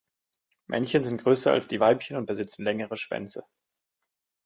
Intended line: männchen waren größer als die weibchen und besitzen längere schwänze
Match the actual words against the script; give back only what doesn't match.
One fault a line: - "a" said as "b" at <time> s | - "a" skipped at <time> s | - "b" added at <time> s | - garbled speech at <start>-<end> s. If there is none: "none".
- "waren" said as "sind" at 1.0 s